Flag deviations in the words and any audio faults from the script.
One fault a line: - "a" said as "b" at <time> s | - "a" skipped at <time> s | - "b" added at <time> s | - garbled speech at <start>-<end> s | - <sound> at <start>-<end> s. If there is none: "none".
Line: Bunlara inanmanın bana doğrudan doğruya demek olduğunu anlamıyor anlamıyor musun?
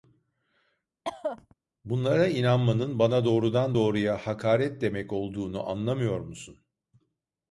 - cough at 1.0-1.5 s
- "hakaret" added at 4.3 s
- "anlamıyor" skipped at 6.2 s